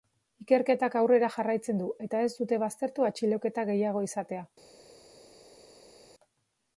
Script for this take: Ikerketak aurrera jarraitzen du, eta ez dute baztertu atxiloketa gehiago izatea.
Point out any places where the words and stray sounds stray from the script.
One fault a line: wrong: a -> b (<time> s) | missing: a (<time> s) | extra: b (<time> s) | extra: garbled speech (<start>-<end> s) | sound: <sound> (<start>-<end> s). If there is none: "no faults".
no faults